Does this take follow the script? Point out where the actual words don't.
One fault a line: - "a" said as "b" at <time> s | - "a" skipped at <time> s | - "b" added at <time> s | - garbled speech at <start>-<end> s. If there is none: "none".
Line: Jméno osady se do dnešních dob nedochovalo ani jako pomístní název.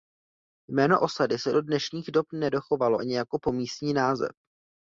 none